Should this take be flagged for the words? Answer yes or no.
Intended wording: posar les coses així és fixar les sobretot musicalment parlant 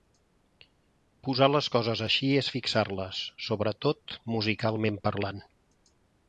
no